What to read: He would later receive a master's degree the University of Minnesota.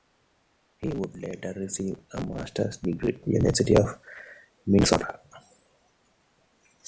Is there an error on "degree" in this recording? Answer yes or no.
no